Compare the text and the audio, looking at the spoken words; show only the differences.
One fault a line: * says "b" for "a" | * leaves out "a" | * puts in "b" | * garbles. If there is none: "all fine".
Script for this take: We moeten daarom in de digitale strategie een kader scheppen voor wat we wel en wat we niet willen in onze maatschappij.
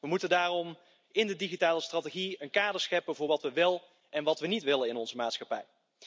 all fine